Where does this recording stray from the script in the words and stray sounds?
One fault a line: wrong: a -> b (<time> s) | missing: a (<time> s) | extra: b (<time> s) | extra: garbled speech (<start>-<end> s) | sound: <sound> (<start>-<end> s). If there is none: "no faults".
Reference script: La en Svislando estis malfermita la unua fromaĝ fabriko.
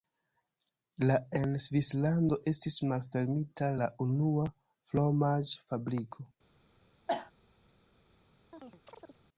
sound: cough (7.1-7.3 s)
sound: chirp (8.5-9.2 s)